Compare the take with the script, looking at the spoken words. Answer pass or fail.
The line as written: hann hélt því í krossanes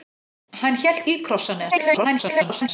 fail